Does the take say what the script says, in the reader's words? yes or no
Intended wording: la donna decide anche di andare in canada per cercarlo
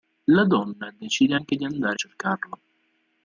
no